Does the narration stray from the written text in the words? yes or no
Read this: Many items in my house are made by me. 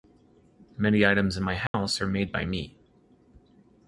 no